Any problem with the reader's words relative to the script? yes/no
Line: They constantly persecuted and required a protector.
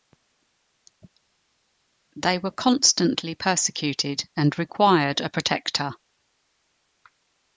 yes